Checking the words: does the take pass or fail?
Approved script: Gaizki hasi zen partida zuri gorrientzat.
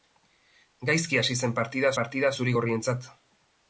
fail